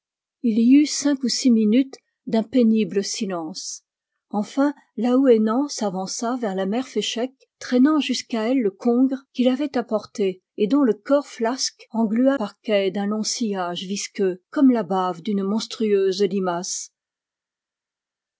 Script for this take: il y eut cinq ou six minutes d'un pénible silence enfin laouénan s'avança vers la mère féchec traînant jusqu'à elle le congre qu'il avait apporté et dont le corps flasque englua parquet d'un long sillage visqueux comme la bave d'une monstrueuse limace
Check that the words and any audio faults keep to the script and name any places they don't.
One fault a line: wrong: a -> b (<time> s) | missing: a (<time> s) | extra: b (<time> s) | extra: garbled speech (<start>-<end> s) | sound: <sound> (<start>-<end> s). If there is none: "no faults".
no faults